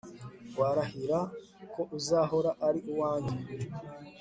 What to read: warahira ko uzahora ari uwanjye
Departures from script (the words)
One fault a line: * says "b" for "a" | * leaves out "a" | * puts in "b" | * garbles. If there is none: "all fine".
all fine